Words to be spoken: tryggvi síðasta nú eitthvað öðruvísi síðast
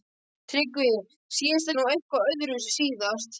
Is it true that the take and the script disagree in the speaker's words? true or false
false